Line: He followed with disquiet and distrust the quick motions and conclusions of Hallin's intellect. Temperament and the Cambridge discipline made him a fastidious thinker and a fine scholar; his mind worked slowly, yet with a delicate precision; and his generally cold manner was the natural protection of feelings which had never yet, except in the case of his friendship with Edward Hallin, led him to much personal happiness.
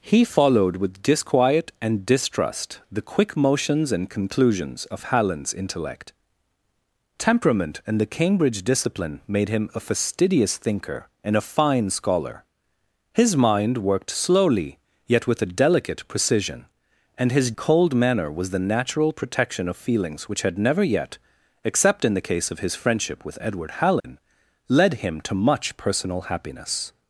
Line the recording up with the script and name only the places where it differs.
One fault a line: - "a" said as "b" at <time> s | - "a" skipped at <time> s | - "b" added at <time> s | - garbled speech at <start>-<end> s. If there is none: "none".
- "generally" skipped at 17.5 s